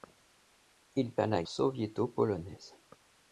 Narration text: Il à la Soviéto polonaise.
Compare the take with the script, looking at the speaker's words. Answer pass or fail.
pass